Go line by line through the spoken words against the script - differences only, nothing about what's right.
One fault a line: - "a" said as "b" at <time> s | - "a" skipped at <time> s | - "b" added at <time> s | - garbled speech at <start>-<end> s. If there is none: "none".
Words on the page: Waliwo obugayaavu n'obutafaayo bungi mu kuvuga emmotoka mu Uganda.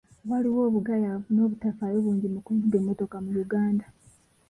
none